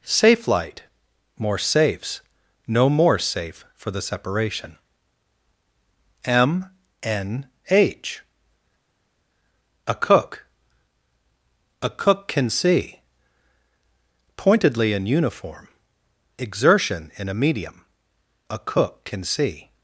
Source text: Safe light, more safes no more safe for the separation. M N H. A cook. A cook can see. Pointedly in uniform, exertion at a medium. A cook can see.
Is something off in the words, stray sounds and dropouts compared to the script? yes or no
yes